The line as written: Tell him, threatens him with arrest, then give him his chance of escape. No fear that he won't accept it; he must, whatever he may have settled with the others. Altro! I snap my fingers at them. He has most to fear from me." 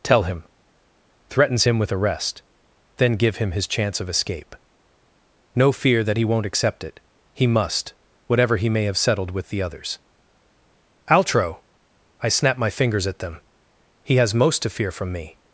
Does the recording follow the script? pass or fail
pass